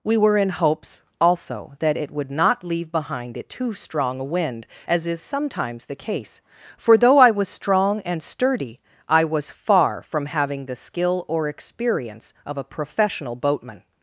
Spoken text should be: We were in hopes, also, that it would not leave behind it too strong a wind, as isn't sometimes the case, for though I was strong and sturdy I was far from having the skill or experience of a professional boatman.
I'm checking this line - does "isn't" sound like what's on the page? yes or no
no